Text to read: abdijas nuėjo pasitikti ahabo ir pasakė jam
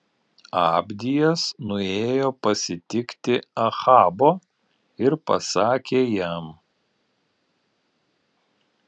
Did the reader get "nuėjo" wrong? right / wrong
right